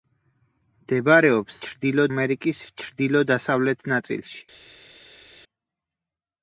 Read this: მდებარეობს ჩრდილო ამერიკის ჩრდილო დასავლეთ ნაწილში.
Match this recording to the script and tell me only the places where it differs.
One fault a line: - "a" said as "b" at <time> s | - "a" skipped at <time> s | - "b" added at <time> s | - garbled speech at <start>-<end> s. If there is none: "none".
none